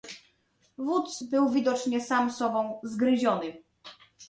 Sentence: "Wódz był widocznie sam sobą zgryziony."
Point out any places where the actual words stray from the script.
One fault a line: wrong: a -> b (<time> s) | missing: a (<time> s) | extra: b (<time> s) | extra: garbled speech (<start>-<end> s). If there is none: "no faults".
no faults